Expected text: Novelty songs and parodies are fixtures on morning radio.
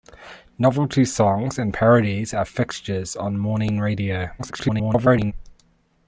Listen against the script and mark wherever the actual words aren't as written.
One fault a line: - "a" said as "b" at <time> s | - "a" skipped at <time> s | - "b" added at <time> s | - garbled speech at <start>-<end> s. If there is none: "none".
- garbled speech at 4.4-5.3 s